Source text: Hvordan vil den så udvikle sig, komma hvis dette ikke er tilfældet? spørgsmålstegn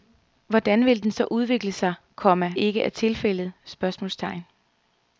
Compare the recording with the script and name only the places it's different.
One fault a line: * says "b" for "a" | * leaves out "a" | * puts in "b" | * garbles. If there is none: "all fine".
* leaves out "hvis dette"